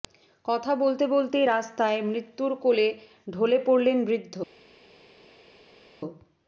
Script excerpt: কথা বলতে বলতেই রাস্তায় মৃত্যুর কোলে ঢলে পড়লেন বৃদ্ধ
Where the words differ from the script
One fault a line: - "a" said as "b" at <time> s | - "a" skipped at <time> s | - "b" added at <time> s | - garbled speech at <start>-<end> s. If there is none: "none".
none